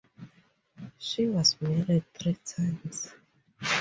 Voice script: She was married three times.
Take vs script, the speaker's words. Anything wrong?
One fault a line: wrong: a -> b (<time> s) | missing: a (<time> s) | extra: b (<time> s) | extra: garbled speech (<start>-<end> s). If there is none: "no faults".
no faults